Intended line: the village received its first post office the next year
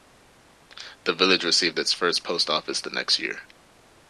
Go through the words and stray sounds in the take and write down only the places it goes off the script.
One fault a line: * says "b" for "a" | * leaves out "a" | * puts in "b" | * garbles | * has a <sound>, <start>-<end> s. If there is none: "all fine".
all fine